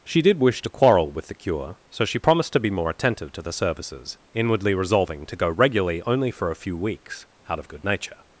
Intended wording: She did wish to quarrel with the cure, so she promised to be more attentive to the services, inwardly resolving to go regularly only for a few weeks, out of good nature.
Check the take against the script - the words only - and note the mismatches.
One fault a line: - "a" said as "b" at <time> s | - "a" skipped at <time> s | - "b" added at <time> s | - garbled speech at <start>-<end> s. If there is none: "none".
none